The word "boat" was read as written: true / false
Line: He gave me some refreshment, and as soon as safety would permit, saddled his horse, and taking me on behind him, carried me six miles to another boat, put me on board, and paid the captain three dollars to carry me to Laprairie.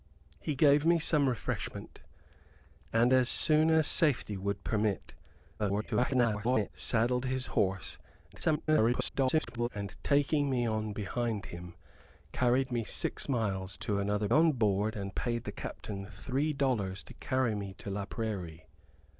false